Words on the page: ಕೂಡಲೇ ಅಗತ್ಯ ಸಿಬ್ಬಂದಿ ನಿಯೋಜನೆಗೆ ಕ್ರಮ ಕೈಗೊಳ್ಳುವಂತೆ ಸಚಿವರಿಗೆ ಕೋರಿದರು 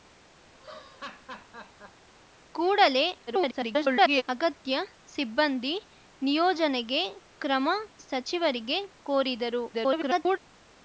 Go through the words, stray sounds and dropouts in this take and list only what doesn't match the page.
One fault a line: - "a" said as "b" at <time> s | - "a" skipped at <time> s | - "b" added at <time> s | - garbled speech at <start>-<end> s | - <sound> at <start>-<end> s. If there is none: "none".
- laugh at 0.5-2.1 s
- garbled speech at 3.3-4.2 s
- "ಕೈಗೊಳ್ಳುವಂತೆ" skipped at 7.7 s
- garbled speech at 9.7-10.4 s